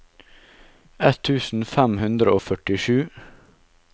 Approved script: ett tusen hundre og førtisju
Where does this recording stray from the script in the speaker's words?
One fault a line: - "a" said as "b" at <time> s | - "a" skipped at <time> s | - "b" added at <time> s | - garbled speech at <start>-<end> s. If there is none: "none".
- "fem" added at 1.7 s